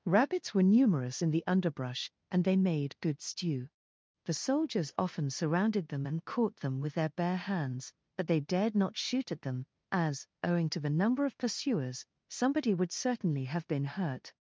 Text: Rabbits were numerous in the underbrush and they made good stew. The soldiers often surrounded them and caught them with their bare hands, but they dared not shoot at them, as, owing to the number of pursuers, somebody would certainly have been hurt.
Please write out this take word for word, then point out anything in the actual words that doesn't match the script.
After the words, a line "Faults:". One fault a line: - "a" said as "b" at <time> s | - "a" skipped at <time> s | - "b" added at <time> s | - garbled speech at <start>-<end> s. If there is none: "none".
Rabbits were numerous in the underbrush and they made good stew. The soldiers often surrounded them and caught them with their bare hands, but they dared not shoot at them, as, owing to the number of pursuers, somebody would certainly have been hurt.
Faults:
none